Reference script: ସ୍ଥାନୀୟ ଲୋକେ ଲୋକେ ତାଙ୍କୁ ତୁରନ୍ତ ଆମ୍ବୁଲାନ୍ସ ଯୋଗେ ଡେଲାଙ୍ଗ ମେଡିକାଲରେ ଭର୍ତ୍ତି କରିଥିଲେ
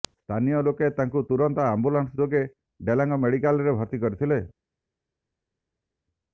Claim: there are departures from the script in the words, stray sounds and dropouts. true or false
true